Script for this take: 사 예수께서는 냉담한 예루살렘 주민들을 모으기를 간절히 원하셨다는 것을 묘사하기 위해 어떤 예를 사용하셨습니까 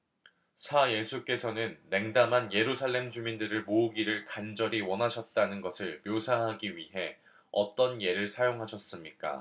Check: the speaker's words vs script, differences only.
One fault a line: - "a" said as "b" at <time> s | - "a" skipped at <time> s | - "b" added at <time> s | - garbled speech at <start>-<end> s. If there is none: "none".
none